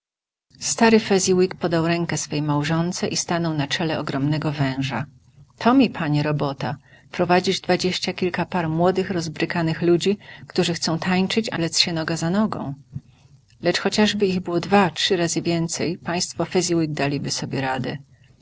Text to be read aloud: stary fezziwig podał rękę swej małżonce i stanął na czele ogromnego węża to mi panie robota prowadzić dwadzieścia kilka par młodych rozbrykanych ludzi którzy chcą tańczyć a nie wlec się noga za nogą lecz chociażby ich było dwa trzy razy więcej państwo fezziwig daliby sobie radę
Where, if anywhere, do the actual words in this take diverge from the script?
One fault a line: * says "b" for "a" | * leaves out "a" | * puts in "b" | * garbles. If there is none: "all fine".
* leaves out "nie"